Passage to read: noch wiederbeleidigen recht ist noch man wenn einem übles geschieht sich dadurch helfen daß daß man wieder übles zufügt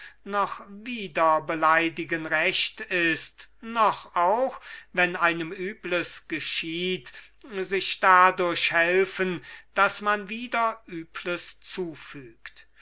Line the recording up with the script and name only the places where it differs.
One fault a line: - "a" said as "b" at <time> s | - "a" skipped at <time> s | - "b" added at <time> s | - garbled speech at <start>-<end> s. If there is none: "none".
- "man" said as "auch" at 4.1 s
- "daß" skipped at 10.0 s